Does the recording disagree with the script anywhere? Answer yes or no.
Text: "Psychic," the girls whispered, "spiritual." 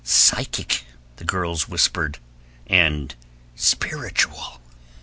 yes